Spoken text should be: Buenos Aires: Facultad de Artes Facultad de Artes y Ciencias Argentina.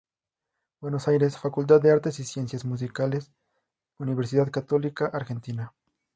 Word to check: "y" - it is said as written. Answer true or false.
false